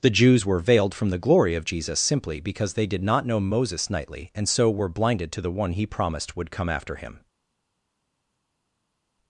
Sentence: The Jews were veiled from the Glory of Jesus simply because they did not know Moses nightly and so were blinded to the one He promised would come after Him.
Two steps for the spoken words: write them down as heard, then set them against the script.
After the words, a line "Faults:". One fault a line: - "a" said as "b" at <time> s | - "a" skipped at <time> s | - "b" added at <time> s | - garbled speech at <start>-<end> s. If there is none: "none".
The Jews were veiled from the Glory of Jesus simply because they did not know Moses nightly and so were blinded to the one He promised would come after Him.
Faults:
none